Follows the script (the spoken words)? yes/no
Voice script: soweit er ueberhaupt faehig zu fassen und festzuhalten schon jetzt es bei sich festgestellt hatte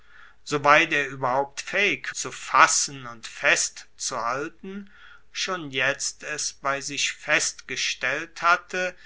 yes